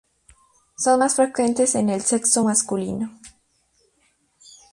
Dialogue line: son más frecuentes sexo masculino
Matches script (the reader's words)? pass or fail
fail